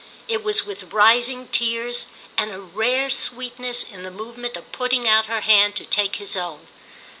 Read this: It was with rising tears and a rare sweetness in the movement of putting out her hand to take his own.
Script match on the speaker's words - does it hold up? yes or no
yes